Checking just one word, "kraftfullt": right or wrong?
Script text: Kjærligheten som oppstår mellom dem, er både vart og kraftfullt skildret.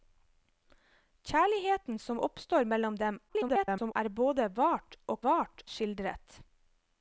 wrong